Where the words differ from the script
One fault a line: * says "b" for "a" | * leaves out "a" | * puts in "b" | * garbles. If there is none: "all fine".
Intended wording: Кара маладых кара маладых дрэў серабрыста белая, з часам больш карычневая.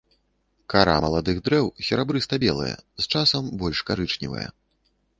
* leaves out "кара маладых"